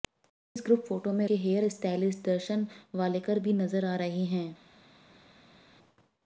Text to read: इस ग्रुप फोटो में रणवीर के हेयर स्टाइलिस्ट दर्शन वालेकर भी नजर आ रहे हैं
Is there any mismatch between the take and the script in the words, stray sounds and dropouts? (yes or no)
yes